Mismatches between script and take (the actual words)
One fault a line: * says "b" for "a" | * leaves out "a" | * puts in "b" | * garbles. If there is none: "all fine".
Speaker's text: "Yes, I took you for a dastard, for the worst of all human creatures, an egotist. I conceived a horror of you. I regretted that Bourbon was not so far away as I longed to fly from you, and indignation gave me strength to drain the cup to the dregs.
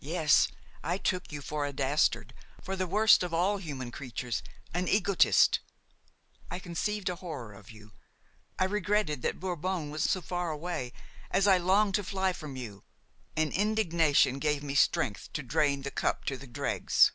* leaves out "not"